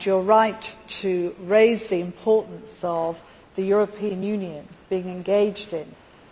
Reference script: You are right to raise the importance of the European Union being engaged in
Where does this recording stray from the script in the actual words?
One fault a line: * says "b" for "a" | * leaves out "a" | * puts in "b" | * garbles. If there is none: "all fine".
all fine